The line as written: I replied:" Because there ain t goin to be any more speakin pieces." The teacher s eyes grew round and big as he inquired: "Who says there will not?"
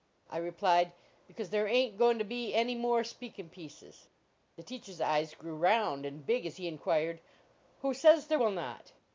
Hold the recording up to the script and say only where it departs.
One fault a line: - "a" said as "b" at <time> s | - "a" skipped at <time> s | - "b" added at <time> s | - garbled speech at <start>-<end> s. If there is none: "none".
none